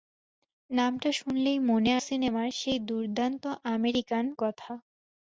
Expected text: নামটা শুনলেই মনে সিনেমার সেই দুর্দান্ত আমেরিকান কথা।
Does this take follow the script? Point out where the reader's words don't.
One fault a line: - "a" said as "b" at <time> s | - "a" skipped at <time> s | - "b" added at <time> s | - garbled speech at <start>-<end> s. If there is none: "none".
none